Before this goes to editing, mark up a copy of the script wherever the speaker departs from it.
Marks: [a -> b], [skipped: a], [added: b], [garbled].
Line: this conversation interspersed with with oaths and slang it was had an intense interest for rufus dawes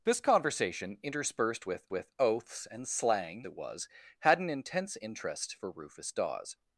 this conversation interspersed with with oaths and slang it was had an intense interest for rufus dawes